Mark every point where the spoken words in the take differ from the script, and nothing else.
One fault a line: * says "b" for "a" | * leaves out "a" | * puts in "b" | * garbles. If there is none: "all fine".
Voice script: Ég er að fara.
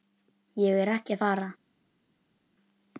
* puts in "ekki"